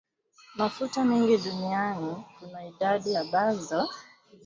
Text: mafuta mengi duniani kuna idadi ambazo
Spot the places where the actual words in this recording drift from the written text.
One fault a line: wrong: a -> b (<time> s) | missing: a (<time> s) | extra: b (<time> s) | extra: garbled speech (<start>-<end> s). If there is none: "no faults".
no faults